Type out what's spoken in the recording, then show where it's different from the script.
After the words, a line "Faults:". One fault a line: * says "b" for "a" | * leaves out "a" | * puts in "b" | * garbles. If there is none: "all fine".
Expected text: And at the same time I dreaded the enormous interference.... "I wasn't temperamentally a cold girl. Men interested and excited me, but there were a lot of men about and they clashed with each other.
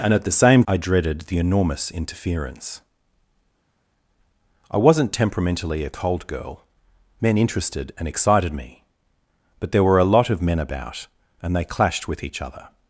And at the same I dreaded the enormous interference.... "I wasn't temperamentally a cold girl. Men interested and excited me, but there were a lot of men about and they clashed with each other.
Faults:
* leaves out "time"